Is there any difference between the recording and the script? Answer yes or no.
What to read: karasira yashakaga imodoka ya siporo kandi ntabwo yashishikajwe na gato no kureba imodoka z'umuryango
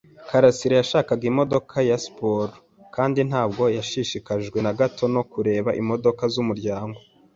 no